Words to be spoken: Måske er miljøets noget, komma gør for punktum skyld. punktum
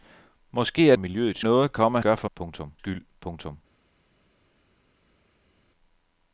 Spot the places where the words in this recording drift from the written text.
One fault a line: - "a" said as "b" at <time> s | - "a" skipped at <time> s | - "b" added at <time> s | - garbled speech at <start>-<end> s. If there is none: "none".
none